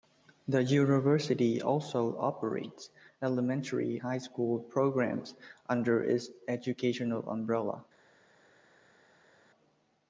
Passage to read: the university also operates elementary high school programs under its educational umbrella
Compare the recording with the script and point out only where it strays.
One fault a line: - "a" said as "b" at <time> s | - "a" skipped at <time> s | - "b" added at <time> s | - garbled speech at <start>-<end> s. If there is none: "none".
none